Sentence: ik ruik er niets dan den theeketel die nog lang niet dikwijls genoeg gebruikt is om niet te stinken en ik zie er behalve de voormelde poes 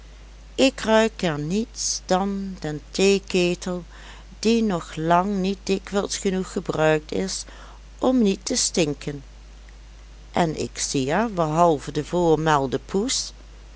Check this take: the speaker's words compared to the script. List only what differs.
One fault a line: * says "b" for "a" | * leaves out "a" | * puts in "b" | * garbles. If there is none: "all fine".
all fine